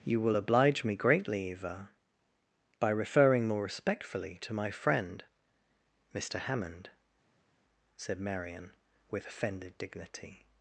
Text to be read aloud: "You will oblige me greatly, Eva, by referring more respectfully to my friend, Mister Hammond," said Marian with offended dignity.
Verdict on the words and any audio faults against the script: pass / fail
pass